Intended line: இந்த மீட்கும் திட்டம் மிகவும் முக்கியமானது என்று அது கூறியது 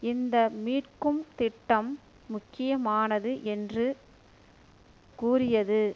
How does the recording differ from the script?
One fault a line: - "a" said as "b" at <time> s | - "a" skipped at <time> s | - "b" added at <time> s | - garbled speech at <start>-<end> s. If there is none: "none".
- "மிகவும்" skipped at 1.9 s
- "அது" skipped at 3.9 s